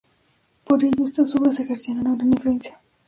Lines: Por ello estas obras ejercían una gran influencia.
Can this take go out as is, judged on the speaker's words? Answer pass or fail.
pass